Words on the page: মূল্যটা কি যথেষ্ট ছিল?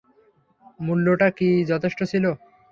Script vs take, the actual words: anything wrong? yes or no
no